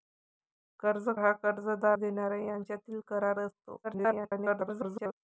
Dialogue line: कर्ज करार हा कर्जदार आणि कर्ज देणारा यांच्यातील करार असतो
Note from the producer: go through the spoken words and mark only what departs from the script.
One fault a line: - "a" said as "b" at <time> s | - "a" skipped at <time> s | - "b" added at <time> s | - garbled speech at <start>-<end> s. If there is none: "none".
- "करार" skipped at 1.1 s
- "आणि कर्ज" skipped at 2.0 s
- garbled speech at 3.8-5.1 s